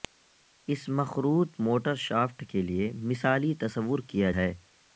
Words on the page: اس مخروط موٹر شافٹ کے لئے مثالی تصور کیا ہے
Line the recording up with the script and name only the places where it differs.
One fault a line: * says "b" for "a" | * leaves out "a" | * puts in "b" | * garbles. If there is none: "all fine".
all fine